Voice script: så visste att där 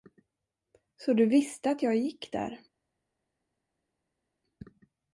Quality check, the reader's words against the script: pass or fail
fail